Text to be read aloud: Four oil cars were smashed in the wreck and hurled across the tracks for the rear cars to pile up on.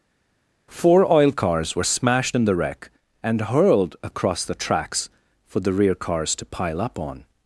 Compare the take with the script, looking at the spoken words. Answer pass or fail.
pass